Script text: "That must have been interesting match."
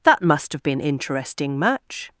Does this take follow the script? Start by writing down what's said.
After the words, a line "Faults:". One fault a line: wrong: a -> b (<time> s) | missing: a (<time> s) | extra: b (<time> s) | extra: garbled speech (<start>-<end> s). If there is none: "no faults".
"That must have been interesting match."
Faults:
no faults